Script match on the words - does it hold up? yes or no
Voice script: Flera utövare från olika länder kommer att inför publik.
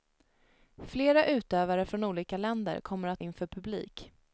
yes